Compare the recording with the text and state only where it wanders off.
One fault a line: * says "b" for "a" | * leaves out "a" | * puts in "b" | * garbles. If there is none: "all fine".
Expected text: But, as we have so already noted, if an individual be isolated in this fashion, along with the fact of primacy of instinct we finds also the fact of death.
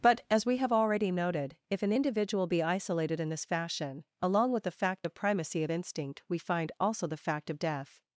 * leaves out "so"
* says "find" for "finds"